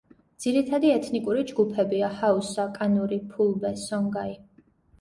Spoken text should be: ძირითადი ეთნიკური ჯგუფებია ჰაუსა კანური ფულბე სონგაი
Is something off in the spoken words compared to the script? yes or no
no